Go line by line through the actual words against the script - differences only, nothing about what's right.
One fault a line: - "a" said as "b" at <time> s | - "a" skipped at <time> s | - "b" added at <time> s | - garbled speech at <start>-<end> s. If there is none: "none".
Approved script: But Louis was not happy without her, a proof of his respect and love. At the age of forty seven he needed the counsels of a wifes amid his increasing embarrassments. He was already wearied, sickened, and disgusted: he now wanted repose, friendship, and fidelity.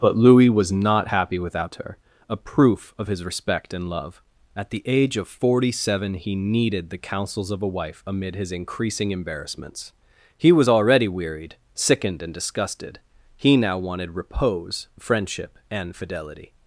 - "wifes" said as "wife" at 7.7 s